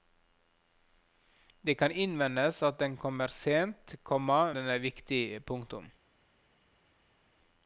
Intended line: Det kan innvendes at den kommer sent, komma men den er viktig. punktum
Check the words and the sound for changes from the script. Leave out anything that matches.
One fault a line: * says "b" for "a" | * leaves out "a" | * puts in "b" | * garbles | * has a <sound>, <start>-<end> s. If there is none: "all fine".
* leaves out "men"